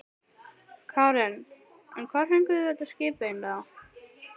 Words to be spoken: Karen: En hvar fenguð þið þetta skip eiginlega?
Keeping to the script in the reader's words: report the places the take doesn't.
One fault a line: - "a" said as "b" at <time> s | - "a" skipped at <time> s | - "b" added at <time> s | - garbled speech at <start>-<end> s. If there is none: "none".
none